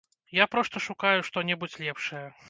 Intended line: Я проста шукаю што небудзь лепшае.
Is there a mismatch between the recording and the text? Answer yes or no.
no